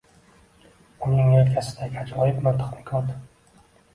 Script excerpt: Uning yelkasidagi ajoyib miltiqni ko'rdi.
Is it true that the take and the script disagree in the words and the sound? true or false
false